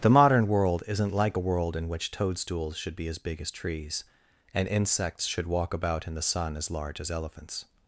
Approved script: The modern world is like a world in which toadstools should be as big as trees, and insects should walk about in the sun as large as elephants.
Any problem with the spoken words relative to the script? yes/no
yes